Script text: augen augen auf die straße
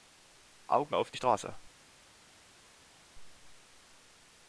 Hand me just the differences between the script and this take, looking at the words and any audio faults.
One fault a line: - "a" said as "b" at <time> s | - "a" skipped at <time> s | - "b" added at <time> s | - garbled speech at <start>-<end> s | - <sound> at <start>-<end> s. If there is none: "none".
- "augen" skipped at 0.9 s